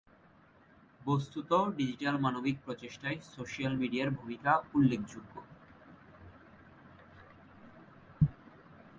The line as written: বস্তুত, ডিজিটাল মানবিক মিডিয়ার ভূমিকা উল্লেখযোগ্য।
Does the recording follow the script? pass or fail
fail